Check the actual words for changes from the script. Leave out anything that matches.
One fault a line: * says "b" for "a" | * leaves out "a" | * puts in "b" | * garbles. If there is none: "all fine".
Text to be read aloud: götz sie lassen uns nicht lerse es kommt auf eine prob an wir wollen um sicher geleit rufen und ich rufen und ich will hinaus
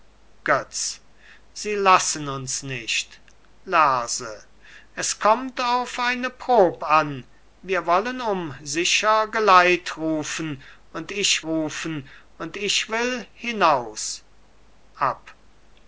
all fine